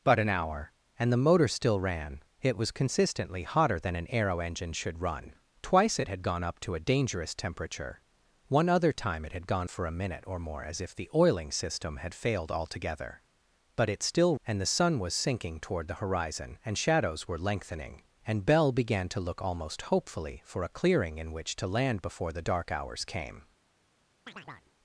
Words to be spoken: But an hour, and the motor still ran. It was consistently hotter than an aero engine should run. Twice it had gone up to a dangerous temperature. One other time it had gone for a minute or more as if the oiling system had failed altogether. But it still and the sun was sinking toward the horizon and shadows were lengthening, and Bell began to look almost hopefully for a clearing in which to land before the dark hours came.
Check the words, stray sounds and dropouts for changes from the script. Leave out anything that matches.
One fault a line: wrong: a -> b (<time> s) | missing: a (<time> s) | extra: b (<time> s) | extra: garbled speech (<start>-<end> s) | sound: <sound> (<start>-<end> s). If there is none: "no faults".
sound: chirp (24.3-24.7 s)